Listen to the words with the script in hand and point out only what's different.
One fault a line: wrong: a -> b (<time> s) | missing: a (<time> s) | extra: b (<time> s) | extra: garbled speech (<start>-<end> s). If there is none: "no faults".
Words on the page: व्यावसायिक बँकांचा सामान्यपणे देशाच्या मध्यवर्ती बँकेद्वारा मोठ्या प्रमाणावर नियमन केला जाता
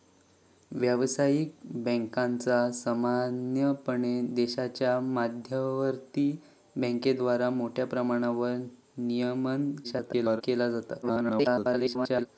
extra: garbled speech (9.8-10.4 s)
extra: garbled speech (11.0-12.3 s)